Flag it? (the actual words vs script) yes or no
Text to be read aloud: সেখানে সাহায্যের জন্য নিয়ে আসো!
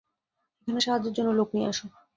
yes